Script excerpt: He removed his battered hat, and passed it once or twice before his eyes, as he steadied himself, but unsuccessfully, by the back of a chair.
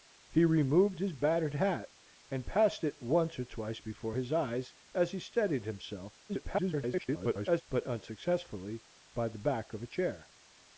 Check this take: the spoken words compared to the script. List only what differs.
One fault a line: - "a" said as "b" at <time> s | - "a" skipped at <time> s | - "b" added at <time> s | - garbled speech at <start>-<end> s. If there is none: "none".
- garbled speech at 6.3-7.6 s